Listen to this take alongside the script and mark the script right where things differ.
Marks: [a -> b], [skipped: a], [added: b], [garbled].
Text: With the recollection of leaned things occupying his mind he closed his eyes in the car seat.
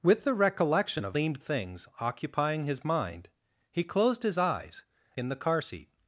With the recollection of leaned things occupying his mind he closed his eyes in the car seat.